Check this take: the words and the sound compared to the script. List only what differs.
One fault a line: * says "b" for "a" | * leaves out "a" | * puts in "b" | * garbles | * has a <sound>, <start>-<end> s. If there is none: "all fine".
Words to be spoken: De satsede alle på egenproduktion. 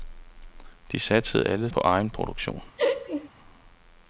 * has a laugh, 2.8-3.3 s